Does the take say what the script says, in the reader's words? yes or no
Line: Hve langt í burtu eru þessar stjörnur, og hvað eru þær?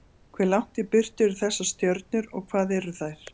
yes